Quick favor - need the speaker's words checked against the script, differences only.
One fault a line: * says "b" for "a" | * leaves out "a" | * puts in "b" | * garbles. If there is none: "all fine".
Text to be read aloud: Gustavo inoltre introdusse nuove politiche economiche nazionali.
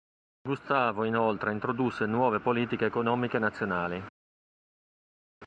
all fine